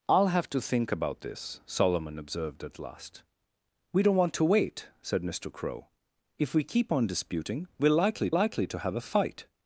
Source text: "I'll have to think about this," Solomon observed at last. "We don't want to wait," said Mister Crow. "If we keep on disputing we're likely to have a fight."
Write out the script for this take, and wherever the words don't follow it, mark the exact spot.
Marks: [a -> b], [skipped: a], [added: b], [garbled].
"I'll have to think about this," Solomon observed at last. "We don't want to wait," said Mister Crow. "If we keep on disputing we're likely [added: likely] to have a fight."